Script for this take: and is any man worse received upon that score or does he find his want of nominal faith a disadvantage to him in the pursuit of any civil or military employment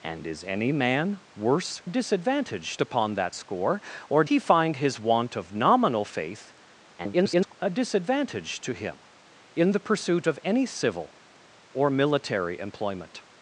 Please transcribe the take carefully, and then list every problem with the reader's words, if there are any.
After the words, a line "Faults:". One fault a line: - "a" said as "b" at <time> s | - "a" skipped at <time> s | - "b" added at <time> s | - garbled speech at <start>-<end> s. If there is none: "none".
and is any man worse disadvantage upon that score or he find his want of nominal faith [garbled] a disadvantage to him in the pursuit of any civil or military employment
Faults:
- "received" said as "disadvantage" at 1.9 s
- "does" skipped at 4.2 s
- garbled speech at 7.0-7.5 s